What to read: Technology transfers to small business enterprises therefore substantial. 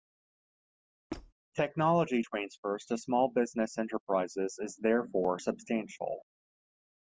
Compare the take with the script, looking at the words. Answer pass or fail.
fail